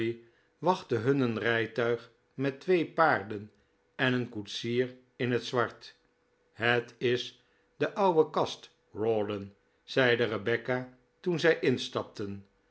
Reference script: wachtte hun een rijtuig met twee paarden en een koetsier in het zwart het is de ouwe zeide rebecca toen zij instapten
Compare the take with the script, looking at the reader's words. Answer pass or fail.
fail